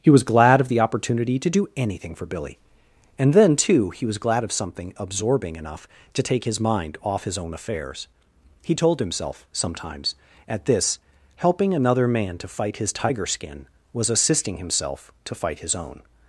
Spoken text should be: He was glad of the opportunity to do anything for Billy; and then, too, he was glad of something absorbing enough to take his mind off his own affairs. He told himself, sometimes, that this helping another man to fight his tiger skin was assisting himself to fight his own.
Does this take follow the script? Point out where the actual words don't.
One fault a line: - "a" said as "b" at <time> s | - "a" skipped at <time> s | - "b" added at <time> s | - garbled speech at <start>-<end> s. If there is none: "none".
- "that" said as "at" at 10.5 s